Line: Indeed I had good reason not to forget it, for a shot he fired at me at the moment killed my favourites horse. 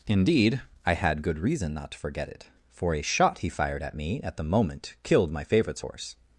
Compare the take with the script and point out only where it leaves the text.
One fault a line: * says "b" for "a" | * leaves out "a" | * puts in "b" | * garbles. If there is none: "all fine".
all fine